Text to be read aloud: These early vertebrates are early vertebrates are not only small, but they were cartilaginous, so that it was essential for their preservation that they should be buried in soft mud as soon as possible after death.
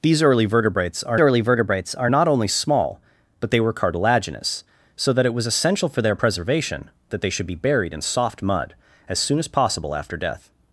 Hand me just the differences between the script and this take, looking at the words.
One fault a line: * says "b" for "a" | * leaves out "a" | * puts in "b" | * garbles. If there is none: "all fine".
all fine